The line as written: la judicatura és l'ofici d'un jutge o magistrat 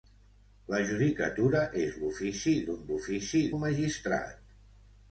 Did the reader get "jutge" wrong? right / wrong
wrong